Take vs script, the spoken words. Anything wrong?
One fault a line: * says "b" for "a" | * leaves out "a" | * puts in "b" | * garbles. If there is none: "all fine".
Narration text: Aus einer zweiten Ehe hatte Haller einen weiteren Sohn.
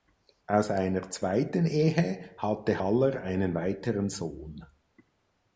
all fine